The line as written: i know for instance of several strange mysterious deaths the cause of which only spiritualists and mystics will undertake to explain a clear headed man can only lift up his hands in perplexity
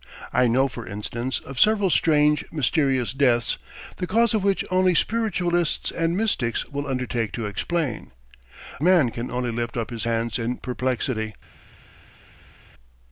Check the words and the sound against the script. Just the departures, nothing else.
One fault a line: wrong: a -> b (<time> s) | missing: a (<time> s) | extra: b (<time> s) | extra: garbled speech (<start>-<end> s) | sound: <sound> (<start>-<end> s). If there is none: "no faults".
missing: a clear headed (8.1 s)